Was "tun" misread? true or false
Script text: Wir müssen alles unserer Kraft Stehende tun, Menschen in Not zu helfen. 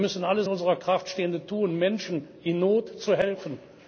false